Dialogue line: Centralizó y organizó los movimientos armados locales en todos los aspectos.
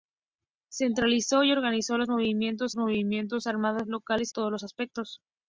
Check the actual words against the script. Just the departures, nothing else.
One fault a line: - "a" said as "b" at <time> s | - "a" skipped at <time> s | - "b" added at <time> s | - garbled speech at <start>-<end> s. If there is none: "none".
- "movimientos" added at 2.8 s
- "en" skipped at 4.3 s